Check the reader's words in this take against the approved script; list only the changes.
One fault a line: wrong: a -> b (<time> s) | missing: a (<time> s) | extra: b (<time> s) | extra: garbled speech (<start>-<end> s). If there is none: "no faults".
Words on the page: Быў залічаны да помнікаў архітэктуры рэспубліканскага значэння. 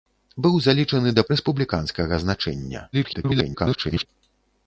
missing: помнікаў архітэктуры (1.2 s)
extra: garbled speech (2.9-4.1 s)